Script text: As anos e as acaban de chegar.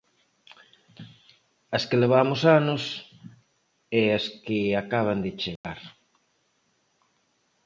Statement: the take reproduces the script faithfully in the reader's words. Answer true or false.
false